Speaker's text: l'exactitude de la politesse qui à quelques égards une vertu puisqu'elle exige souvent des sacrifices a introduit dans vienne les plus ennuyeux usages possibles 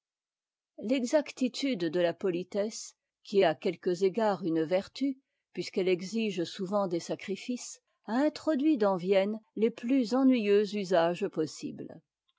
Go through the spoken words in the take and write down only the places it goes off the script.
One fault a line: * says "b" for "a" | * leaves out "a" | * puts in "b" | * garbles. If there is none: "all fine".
all fine